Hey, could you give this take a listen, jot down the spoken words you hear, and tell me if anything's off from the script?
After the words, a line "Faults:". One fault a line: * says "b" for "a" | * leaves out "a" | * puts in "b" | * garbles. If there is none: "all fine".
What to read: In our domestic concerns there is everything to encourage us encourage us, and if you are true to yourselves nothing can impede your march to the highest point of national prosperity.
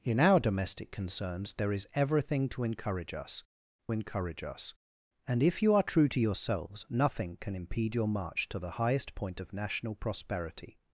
In our domestic concerns there is everything to encourage us encourage us, and if you are true to yourselves nothing can impede your march to the highest point of national prosperity.
Faults:
all fine